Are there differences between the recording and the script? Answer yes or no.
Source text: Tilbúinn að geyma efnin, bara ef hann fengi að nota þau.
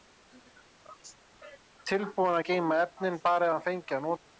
no